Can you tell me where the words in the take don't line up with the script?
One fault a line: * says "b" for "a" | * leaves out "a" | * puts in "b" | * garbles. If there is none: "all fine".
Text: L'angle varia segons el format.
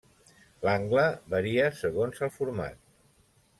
all fine